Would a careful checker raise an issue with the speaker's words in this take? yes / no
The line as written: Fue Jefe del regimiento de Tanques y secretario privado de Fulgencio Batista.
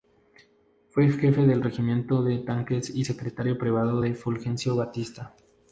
no